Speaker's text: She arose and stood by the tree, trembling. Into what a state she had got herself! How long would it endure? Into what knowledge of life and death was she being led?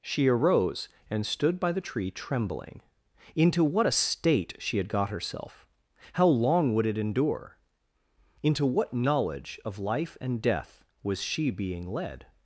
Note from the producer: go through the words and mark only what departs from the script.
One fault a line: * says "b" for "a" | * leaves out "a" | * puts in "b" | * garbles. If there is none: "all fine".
all fine